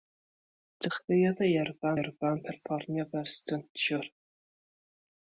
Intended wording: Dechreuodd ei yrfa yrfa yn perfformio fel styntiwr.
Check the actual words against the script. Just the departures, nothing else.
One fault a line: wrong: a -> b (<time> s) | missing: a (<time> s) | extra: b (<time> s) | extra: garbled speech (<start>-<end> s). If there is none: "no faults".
no faults